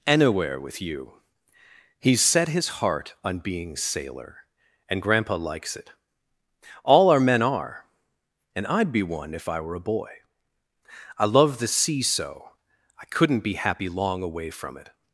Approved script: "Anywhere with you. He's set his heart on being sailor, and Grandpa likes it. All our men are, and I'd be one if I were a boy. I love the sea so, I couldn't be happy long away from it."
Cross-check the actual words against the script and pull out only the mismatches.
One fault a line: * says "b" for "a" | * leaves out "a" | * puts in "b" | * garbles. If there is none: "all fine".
all fine